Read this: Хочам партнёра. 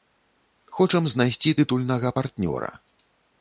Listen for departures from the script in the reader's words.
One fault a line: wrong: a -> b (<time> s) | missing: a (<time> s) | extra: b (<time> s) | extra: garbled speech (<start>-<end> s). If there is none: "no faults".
extra: знайсці тытульнага (1.1 s)